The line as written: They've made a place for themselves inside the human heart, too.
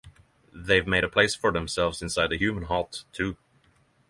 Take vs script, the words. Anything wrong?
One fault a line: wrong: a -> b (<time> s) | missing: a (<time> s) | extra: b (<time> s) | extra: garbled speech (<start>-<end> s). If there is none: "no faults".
no faults